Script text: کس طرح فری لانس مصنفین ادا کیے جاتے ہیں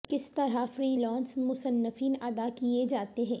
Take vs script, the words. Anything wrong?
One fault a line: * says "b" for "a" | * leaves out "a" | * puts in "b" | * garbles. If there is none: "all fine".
all fine